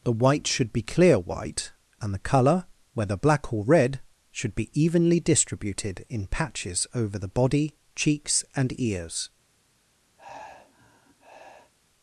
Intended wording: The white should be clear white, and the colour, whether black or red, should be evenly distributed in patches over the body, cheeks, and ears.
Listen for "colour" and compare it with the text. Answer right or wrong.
right